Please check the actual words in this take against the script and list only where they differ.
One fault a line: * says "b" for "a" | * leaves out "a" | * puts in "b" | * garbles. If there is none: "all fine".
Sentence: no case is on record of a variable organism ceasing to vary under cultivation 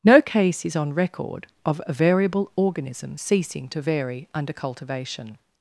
all fine